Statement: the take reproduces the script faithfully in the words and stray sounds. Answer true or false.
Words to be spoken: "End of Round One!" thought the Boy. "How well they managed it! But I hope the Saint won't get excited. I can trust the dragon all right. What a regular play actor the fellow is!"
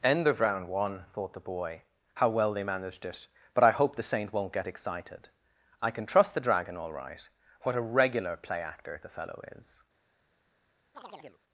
false